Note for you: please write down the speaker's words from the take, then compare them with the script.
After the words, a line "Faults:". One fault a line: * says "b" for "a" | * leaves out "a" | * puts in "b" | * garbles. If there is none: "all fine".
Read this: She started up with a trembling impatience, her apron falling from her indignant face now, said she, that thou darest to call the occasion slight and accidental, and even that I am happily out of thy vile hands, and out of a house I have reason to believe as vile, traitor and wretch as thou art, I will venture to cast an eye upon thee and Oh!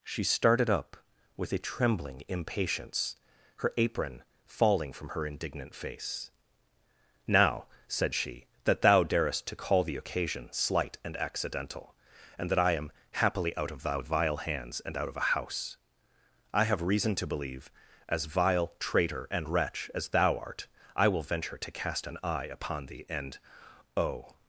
She started up with a trembling impatience, her apron falling from her indignant face now, said she, that thou darest to call the occasion slight and accidental, and that I am happily out of thy vile hands, and out of a house I have reason to believe as vile, traitor and wretch as thou art, I will venture to cast an eye upon thee and Oh!
Faults:
* leaves out "even"